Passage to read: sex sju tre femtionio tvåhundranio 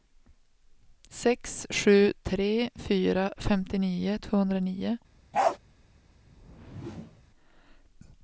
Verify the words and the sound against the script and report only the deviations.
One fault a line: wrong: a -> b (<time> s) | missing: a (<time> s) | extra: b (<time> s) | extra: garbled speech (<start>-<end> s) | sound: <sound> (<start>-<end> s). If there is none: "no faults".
extra: fyra (2.8 s)
sound: bark (5.3-5.6 s)
sound: whoosh (6.2-7.2 s)